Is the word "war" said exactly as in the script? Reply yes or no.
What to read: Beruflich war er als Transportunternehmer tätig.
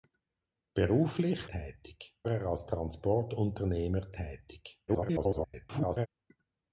no